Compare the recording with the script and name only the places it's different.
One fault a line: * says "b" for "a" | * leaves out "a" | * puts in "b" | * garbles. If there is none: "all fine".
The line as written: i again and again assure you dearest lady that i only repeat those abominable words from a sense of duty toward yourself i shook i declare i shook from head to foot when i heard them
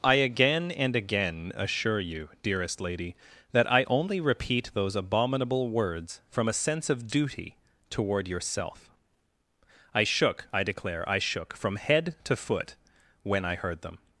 all fine